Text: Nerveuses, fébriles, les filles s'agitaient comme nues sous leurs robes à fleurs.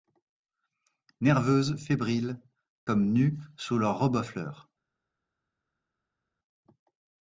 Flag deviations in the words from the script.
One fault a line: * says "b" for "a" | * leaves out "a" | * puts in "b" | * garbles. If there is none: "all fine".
* leaves out "les filles s'agitaient"